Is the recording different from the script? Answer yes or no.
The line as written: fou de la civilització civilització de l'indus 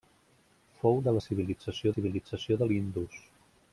no